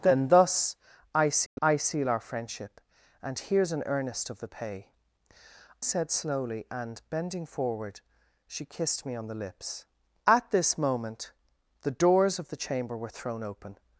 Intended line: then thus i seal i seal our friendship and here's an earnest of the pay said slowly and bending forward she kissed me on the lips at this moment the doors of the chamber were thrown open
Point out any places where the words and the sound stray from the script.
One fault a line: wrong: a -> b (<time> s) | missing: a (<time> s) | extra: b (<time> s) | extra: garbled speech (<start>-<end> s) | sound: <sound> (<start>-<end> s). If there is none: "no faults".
sound: dropout (1.5-1.6 s)